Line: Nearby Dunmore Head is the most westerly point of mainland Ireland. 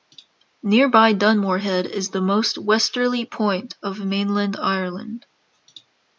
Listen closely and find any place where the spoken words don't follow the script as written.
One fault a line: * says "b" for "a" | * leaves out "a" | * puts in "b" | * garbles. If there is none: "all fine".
all fine